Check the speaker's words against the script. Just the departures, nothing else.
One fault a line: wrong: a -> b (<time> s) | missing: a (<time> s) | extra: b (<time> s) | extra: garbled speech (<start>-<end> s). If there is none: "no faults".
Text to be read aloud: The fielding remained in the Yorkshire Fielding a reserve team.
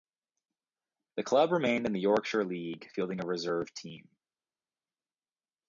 wrong: fielding -> club (1.2 s)
extra: League (2.4 s)